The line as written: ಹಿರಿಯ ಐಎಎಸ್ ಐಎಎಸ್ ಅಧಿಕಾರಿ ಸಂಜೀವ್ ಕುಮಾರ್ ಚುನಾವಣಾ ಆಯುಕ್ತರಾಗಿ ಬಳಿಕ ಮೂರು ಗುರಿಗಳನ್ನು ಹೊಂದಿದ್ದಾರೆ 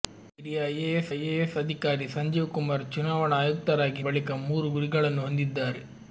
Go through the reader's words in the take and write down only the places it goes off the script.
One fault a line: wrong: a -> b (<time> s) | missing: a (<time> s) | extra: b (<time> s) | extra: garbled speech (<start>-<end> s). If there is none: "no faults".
no faults